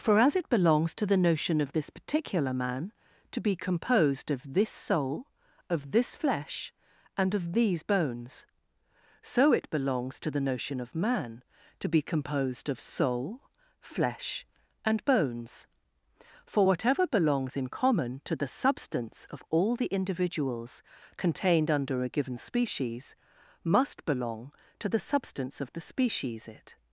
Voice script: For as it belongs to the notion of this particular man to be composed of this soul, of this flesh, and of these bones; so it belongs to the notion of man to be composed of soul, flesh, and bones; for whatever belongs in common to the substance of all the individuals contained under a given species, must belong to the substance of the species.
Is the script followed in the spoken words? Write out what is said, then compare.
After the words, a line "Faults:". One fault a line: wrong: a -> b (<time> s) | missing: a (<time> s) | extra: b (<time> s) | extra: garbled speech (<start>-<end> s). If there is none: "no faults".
For as it belongs to the notion of this particular man to be composed of this soul, of this flesh, and of these bones; so it belongs to the notion of man to be composed of soul, flesh, and bones; for whatever belongs in common to the substance of all the individuals contained under a given species, must belong to the substance of the species. It
Faults:
extra: It (26.5 s)